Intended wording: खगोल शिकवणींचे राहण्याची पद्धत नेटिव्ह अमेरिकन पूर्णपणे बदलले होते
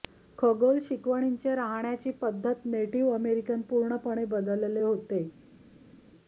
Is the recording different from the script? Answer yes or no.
no